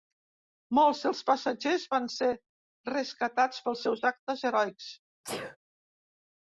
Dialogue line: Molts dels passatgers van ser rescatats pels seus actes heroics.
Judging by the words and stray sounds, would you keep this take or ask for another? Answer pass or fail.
fail